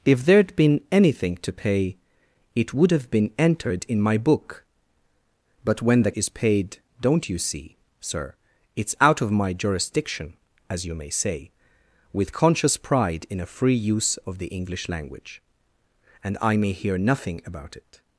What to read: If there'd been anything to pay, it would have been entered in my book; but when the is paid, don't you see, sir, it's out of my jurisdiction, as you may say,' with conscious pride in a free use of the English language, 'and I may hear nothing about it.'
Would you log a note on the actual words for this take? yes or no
no